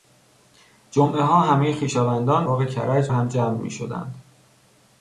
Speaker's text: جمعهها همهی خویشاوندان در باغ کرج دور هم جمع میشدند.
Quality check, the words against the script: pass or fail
fail